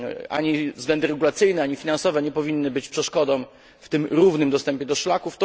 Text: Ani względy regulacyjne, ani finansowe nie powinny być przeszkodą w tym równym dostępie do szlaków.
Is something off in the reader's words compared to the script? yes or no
no